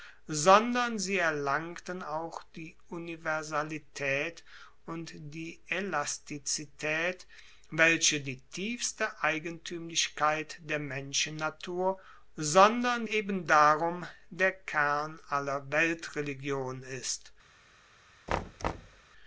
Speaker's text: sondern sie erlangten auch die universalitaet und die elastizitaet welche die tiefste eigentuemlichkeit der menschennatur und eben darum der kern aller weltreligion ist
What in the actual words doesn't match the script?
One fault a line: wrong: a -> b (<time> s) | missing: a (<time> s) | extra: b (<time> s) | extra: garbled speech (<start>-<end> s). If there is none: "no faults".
wrong: und -> sondern (12.4 s)